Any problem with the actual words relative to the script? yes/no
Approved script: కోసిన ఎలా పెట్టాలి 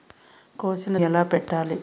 no